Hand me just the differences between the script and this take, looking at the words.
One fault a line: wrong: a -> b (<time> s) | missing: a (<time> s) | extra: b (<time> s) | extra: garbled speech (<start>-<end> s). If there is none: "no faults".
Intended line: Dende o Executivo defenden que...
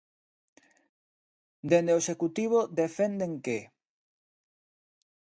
no faults